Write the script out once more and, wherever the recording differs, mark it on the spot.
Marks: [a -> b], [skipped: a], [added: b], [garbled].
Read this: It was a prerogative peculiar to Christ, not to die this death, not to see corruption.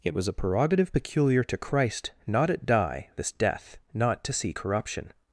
It was a prerogative peculiar to Christ, not [to -> at] die this death, not to see corruption.